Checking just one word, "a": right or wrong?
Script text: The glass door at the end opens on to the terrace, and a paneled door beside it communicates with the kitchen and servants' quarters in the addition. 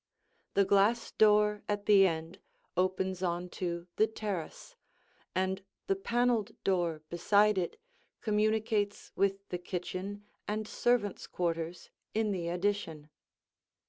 wrong